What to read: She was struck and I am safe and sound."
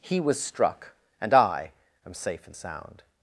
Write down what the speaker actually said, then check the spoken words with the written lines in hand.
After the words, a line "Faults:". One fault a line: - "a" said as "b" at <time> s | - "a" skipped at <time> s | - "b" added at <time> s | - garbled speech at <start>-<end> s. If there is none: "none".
He was struck and I am safe and sound."
Faults:
- "She" said as "He" at 0.0 s